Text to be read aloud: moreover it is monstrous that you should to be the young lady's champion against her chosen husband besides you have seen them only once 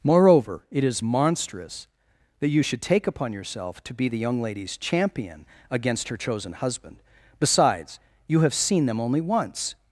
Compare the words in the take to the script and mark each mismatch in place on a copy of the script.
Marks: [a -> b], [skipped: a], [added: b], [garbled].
moreover it is monstrous that you should [added: take upon yourself] to be the young lady's champion against her chosen husband besides you have seen them only once